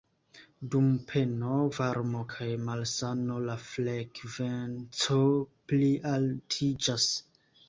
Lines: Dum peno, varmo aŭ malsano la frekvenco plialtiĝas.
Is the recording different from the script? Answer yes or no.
yes